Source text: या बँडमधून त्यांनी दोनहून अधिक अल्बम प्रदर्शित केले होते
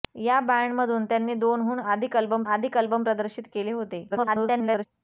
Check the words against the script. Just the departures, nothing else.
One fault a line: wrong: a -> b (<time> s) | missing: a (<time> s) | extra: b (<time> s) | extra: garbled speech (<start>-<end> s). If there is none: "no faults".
extra: अधिक अल्बम (2.4 s)
extra: garbled speech (4.1-4.9 s)